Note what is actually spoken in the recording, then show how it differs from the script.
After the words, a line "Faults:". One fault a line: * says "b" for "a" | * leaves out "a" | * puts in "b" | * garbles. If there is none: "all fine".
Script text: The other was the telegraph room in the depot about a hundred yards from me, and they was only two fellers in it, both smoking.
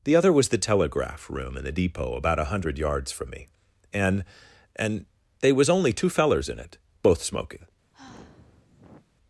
The other was the telegraph room in the depot about a hundred yards from me, and and they was only two fellers in it, both smoking.
Faults:
* puts in "and"